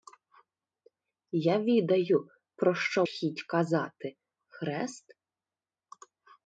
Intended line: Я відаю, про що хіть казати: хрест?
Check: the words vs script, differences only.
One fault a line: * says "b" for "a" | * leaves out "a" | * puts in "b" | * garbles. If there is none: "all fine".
all fine